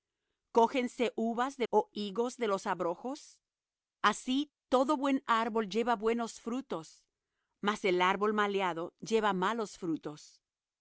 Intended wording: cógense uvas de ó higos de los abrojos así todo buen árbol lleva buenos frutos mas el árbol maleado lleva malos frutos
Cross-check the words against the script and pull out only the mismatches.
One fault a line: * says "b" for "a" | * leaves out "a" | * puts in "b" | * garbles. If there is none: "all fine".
all fine